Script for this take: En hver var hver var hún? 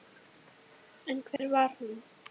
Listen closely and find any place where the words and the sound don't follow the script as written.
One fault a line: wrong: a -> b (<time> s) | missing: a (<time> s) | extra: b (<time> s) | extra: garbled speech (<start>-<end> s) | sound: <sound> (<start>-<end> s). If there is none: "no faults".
sound: dropout (1.4-1.4 s)
missing: hver var (1.7 s)